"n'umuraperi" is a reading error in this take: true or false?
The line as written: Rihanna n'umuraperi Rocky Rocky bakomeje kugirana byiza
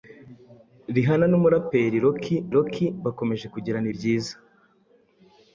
false